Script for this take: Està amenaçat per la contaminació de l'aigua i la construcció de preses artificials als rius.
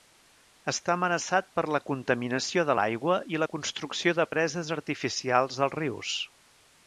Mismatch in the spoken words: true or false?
false